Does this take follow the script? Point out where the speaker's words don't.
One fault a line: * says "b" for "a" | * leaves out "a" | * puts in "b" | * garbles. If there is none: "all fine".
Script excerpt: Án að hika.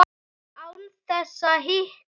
* puts in "þess"